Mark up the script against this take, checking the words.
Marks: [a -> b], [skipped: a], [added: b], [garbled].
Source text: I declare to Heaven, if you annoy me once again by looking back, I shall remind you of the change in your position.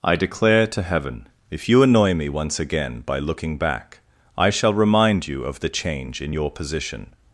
I declare to Heaven, if you annoy me once again by looking back, I shall remind you of the change in your position.